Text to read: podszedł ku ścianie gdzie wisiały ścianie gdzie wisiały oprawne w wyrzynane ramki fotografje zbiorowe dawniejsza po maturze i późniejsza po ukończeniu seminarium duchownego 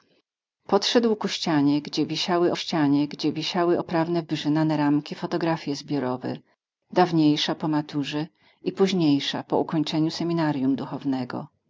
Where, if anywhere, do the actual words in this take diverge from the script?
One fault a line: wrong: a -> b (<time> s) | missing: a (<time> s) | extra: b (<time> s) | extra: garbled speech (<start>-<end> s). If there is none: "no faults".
no faults